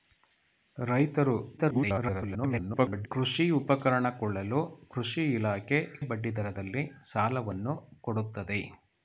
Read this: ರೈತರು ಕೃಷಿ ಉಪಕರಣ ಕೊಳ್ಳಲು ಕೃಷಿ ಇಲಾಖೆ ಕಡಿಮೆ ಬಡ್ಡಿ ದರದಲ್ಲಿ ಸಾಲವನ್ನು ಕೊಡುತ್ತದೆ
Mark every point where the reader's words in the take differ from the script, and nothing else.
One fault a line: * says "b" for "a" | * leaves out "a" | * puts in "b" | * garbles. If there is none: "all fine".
* garbles
* leaves out "ಕಡಿಮೆ"